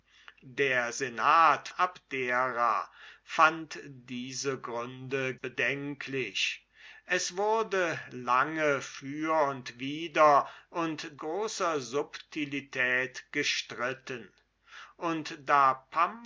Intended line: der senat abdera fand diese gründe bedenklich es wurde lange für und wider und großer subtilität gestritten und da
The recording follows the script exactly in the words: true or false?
true